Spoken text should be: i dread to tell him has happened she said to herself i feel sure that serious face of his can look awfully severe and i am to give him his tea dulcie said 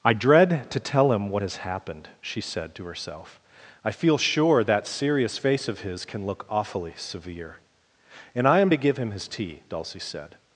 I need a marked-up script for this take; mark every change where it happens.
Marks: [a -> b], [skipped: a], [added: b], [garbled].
i dread to tell him [added: what] has happened she said to herself i feel sure that serious face of his can look awfully severe and i am to give him his tea dulcie said